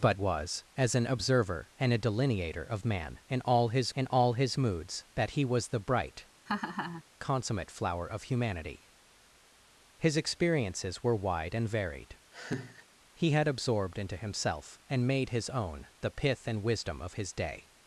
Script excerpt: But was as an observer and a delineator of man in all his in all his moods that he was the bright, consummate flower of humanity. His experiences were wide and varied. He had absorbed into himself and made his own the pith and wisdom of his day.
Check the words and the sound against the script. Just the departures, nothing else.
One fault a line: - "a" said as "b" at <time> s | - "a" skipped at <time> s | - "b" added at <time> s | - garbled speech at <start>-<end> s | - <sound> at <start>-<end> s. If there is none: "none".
- laugh at 6.5-7.0 s
- laugh at 12.3-12.9 s